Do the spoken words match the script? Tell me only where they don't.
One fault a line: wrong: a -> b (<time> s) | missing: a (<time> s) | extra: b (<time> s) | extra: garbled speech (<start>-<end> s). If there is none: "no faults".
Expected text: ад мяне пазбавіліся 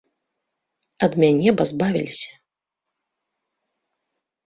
no faults